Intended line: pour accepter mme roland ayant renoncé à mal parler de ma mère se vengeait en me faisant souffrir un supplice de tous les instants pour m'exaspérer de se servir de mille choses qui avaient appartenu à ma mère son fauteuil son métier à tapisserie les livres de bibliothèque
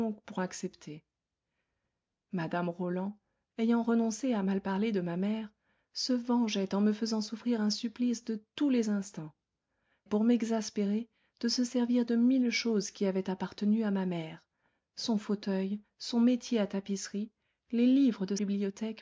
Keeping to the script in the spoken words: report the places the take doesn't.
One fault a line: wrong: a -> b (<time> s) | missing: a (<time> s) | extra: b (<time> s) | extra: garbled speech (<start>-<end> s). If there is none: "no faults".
no faults